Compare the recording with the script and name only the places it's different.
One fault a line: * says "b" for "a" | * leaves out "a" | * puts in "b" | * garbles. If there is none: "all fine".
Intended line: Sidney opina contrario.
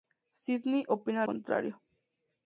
all fine